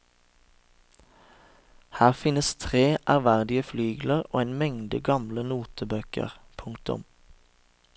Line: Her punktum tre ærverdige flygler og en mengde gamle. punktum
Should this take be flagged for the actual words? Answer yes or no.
yes